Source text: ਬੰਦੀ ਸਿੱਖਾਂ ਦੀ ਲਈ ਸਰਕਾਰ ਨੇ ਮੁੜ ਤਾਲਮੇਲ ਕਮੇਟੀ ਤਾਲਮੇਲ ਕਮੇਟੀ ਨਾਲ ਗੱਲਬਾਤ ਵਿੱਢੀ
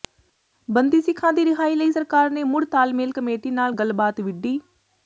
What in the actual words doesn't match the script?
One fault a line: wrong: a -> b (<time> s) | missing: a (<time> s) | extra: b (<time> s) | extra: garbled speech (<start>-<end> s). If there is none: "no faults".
extra: ਰਿਹਾਈ (1.4 s)
missing: ਤਾਲਮੇਲ ਕਮੇਟੀ (3.5 s)